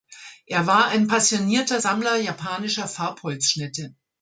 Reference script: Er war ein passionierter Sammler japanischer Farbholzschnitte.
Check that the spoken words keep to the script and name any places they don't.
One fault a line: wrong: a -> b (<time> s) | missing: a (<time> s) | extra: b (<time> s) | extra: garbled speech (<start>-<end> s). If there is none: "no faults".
no faults